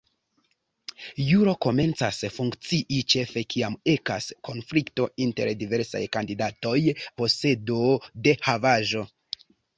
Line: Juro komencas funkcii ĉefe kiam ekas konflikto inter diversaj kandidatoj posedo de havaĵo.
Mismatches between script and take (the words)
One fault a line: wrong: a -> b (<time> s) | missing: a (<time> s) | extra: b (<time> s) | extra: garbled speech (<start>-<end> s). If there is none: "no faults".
no faults